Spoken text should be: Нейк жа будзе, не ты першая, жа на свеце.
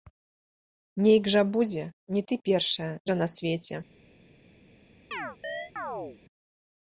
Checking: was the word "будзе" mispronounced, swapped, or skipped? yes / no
no